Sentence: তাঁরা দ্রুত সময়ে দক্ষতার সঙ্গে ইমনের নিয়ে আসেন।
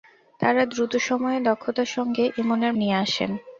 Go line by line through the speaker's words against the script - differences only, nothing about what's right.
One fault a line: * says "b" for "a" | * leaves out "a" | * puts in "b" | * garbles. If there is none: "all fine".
all fine